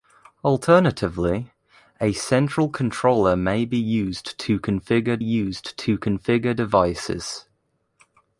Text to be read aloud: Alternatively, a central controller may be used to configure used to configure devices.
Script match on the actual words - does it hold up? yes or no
yes